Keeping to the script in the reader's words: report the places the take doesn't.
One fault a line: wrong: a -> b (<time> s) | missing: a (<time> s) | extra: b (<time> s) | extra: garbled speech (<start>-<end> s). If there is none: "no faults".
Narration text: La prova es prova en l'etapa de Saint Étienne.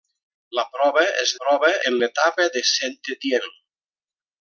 no faults